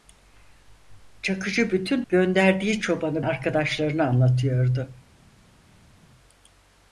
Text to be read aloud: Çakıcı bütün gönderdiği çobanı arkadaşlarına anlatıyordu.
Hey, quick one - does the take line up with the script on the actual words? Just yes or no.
yes